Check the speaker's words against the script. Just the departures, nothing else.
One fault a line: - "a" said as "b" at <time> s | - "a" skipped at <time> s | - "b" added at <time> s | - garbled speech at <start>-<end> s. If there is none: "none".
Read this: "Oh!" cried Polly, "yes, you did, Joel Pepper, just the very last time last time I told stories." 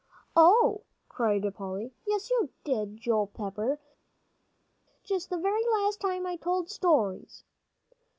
- "last time" skipped at 6.3 s